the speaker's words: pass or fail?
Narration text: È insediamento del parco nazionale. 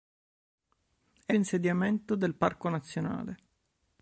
pass